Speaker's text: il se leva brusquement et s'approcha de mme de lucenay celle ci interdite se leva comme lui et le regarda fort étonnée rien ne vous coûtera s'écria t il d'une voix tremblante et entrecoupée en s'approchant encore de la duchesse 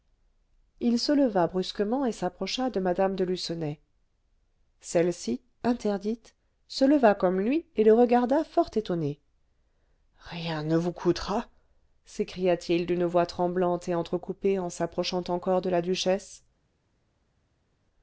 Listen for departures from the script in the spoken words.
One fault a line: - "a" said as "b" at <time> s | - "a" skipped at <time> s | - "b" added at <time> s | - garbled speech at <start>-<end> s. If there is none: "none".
none